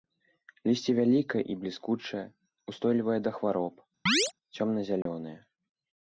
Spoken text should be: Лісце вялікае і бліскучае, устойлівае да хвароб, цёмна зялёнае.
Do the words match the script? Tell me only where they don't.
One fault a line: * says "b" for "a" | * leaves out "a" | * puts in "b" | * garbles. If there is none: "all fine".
all fine